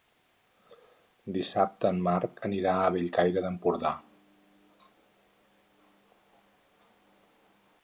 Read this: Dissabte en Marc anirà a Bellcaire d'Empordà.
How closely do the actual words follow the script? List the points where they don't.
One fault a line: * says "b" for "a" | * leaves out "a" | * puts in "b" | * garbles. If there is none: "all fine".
all fine